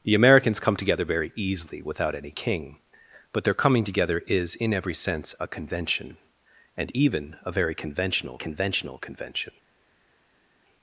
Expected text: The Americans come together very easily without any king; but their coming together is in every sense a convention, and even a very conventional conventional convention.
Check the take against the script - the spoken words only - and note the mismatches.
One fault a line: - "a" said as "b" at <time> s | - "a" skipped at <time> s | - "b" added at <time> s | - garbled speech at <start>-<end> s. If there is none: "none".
none